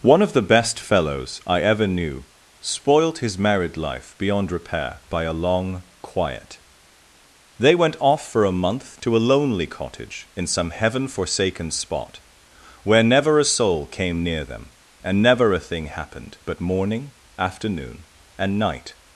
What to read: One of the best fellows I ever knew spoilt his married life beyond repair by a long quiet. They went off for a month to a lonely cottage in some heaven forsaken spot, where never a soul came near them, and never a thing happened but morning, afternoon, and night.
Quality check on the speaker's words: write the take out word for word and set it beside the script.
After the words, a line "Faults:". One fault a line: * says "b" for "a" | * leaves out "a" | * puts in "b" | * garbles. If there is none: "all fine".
One of the best fellows I ever knew spoilt his married life beyond repair by a long quiet. They went off for a month to a lonely cottage in some heaven forsaken spot, where never a soul came near them, and never a thing happened but morning, afternoon, and night.
Faults:
all fine